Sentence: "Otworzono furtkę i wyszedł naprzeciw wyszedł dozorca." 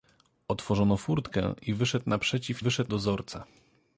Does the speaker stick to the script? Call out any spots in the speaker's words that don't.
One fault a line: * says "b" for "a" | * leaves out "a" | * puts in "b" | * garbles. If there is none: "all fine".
all fine